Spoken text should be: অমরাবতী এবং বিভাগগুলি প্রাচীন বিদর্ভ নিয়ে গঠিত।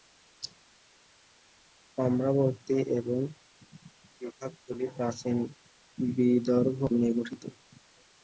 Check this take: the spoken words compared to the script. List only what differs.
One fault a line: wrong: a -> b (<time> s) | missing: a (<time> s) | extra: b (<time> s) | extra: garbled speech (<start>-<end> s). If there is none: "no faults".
no faults